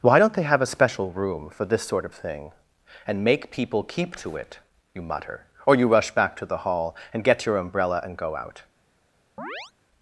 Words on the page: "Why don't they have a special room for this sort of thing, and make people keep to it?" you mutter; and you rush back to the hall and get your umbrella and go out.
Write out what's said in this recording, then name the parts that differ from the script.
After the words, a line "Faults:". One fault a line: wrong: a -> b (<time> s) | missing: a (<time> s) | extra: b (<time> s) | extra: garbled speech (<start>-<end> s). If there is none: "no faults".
"Why don't they have a special room for this sort of thing, and make people keep to it?" you mutter; or you rush back to the hall and get your umbrella and go out.
Faults:
wrong: and -> or (5.7 s)